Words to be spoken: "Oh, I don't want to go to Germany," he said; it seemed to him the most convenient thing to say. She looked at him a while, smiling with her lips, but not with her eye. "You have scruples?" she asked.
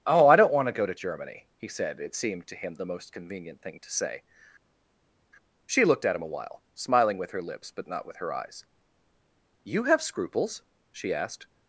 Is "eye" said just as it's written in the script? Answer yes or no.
no